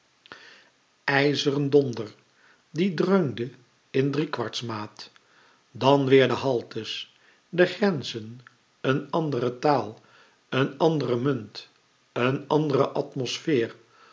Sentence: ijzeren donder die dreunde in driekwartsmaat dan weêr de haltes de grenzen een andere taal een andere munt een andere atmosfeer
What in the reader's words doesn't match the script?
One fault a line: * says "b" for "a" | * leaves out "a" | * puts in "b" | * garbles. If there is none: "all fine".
all fine